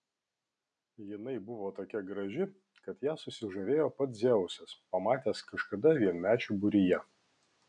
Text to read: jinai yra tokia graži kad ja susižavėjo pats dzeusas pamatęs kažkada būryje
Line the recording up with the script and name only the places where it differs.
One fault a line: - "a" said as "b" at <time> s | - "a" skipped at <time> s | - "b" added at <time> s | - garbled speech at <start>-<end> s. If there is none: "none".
- "yra" said as "buvo" at 1.5 s
- "vienmečių" added at 6.0 s